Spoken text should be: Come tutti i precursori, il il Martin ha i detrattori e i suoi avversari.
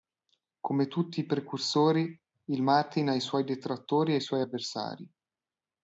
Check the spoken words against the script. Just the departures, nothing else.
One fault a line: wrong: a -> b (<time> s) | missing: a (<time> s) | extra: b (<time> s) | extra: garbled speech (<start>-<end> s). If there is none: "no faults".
missing: il (2.6 s)
extra: suoi (3.2 s)